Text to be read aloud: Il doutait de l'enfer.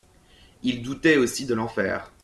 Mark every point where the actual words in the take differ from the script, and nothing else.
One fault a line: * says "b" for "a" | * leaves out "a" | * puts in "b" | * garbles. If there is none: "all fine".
* puts in "aussi"